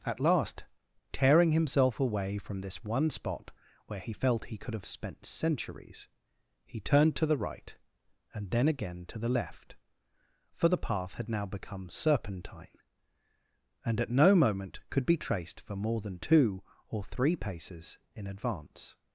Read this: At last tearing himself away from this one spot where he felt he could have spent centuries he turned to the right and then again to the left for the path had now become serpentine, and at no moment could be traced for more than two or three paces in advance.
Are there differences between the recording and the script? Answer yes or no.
no